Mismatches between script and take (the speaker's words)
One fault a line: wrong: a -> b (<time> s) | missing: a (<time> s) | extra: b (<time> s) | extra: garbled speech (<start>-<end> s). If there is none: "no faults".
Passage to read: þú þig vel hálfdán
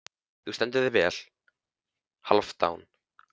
extra: stendur (0.6 s)